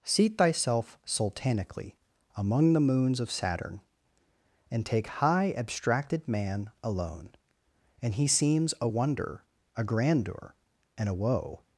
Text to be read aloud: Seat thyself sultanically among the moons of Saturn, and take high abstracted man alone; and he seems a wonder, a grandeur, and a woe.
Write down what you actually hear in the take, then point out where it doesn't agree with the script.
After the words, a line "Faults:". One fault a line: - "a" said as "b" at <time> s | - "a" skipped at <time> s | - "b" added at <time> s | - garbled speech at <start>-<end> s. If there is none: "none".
Seat thyself sultanically among the moons of Saturn, and take high abstracted man alone; and he seems a wonder, a grandeur, and a woe.
Faults:
none